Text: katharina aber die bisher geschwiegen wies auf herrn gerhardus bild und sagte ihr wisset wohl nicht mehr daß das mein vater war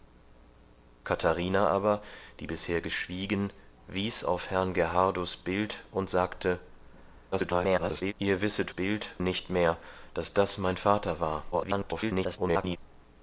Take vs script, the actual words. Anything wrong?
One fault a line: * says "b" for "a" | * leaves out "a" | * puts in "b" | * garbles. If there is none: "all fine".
* garbles
* says "bild" for "wohl"
* garbles